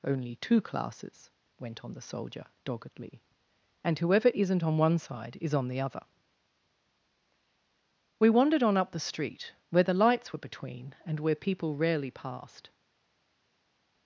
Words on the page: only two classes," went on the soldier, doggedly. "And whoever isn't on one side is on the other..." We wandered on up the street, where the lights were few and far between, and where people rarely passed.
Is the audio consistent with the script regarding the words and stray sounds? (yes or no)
no